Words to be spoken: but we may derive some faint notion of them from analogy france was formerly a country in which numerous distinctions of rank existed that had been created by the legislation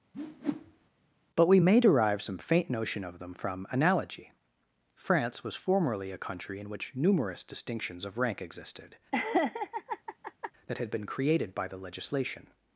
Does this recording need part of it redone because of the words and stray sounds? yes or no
yes